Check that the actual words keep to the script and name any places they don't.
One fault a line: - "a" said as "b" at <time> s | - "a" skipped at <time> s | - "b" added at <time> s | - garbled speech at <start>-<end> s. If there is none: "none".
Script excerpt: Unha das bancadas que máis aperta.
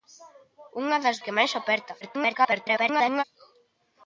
- "bancadas" skipped at 1.2 s
- garbled speech at 2.0-3.2 s